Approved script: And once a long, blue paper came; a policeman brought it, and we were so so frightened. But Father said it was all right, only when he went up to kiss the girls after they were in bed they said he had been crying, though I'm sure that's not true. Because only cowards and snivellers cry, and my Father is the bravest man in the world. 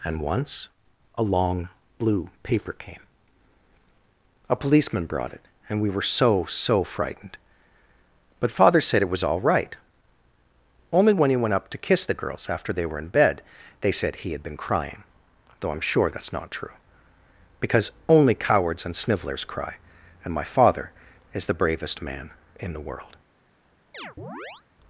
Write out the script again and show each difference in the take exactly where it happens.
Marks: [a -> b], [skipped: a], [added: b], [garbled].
And once a long, blue paper came; a policeman brought it, and we were so so frightened. But Father said it was all right, only when he went up to kiss the girls after they were in bed they said he had been crying, though I'm sure that's not true. Because only cowards and snivellers cry, and my Father is the bravest man in the world.